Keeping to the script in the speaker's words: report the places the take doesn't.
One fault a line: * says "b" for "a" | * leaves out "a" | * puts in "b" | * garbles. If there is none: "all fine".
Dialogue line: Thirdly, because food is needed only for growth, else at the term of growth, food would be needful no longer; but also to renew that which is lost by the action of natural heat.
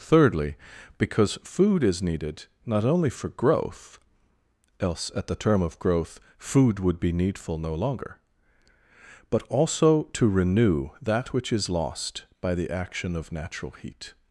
* puts in "not"